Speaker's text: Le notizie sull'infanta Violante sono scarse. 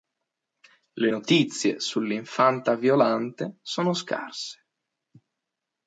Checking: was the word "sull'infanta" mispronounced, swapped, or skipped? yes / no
no